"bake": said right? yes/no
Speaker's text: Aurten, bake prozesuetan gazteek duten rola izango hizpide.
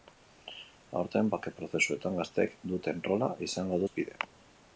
yes